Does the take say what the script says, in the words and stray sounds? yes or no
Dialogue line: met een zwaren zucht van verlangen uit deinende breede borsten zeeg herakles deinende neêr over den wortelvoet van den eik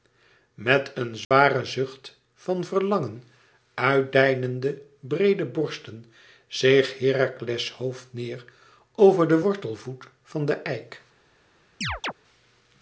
no